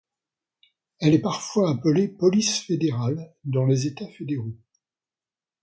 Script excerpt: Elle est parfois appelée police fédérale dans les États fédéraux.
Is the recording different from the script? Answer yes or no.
no